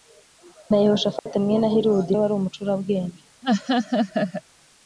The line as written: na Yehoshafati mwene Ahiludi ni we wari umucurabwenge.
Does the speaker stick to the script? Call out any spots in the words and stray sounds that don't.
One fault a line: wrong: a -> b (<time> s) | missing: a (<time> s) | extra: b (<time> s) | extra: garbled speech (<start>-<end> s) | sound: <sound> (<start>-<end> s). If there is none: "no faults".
sound: dropout (1.2-1.3 s)
missing: ni (2.1 s)
sound: laugh (3.4-4.4 s)